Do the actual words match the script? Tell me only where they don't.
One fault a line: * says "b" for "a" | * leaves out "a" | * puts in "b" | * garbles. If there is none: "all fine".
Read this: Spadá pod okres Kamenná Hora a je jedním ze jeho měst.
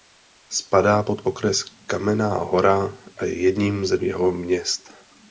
all fine